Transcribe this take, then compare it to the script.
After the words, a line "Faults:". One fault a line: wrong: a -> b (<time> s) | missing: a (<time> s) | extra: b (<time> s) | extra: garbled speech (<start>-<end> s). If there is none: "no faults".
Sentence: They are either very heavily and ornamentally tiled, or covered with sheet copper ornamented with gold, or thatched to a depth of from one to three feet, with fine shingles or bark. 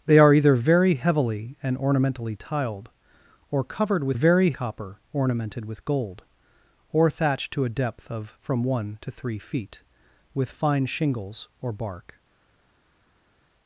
They are either very heavily and ornamentally tiled, or covered with very copper ornamented with gold, or thatched to a depth of from one to three feet, with fine shingles or bark.
Faults:
wrong: sheet -> very (4.1 s)